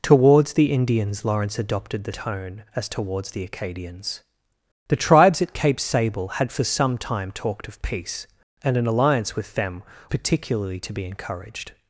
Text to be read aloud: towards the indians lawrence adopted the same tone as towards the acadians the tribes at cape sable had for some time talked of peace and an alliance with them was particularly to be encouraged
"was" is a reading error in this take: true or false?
true